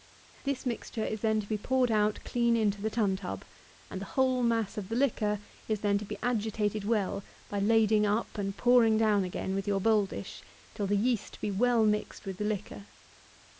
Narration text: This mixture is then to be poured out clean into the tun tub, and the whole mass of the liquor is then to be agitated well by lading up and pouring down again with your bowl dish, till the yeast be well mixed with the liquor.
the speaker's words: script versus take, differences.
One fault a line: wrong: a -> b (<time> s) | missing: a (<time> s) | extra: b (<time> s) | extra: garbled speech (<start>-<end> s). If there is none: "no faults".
no faults